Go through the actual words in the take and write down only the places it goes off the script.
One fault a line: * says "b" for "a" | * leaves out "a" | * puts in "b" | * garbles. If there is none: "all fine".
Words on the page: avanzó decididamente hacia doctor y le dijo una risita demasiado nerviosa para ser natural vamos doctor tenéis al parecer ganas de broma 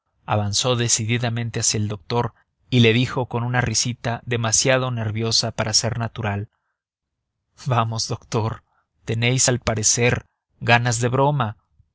* puts in "el"
* puts in "con"